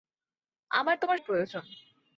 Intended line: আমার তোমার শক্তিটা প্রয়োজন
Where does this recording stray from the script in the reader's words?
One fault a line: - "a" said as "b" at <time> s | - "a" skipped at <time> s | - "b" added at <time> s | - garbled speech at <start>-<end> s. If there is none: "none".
- "শক্তিটা" skipped at 1.2 s